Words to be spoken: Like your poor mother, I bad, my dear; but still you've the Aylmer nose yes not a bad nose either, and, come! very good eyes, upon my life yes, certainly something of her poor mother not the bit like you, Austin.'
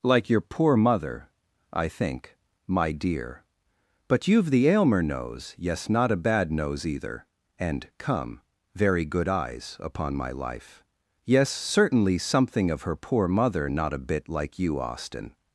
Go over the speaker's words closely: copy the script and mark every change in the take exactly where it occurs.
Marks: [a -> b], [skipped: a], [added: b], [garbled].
Like your poor mother, I [bad, -> think] my dear; but [skipped: still] you've the Aylmer nose yes not a bad nose either, and, come! very good eyes, upon my life yes, certainly something of her poor mother not [the -> a] bit like you, Austin.'